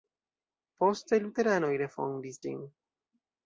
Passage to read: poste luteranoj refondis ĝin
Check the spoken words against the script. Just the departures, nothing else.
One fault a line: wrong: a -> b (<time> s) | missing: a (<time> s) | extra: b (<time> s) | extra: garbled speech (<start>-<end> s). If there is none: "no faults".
no faults